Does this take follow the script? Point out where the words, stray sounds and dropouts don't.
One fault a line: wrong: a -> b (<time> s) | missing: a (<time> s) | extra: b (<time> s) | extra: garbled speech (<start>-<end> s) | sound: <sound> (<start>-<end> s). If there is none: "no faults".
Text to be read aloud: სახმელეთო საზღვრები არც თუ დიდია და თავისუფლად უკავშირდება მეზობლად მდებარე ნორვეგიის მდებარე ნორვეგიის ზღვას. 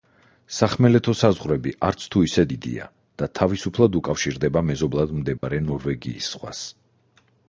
extra: ისე (2.3 s)
sound: dropout (5.4-5.4 s)
missing: მდებარე ნორვეგიის (6.3 s)